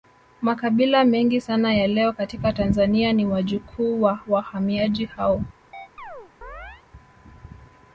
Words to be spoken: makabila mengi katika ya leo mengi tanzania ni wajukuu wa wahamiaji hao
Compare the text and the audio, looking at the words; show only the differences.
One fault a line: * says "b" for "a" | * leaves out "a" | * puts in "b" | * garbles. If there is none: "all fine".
* says "sana" for "katika"
* says "katika" for "mengi"